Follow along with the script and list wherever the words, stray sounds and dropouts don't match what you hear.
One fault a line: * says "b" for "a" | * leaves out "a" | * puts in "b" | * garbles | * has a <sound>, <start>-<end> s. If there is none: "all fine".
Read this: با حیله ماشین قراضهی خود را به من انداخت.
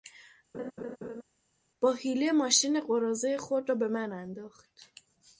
* has a laugh, 0.5-1.2 s